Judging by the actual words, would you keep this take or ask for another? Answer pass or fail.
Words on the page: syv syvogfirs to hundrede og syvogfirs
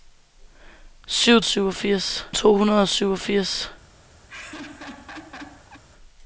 pass